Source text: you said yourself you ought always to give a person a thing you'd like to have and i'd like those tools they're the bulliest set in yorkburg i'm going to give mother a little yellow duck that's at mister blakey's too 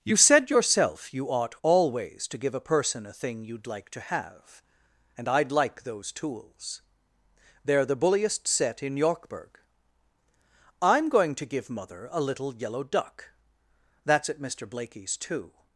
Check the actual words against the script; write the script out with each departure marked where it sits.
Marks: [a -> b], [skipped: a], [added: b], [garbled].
you said yourself you ought always to give a person a thing you'd like to have and i'd like those tools they're the bulliest set in yorkburg i'm going to give mother a little yellow duck that's at mister blakey's too